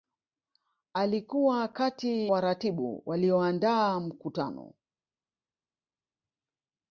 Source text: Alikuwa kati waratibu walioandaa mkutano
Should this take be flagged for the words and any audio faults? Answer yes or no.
no